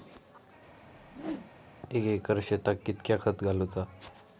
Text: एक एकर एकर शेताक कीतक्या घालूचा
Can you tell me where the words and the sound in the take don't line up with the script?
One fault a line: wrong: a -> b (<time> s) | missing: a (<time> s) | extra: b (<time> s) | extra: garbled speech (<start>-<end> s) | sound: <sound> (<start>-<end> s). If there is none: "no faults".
sound: whoosh (0.8-1.5 s)
missing: एकर (2.4 s)
extra: खत (3.2 s)